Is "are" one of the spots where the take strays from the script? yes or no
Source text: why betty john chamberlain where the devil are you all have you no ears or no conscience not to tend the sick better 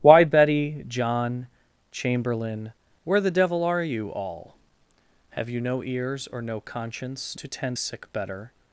no